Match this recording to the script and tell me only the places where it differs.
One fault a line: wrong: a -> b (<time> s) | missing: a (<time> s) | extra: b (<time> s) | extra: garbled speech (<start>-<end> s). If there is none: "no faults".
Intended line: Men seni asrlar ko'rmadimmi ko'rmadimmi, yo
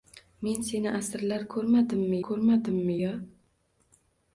no faults